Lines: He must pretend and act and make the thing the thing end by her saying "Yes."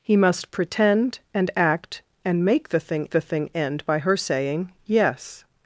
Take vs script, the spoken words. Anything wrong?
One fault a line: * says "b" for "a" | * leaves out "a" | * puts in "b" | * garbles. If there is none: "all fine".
all fine